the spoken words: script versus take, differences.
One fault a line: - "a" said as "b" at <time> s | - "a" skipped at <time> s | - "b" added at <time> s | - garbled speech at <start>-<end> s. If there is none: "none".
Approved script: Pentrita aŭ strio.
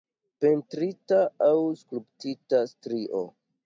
- "skulptita" added at 1.8 s